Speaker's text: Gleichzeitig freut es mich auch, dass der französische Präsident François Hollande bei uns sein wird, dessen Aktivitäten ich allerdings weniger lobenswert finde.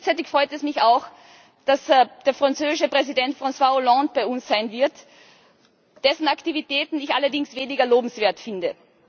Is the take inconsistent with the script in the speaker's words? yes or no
no